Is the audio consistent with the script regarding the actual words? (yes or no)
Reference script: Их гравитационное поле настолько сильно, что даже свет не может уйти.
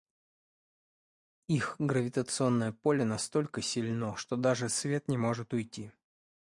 yes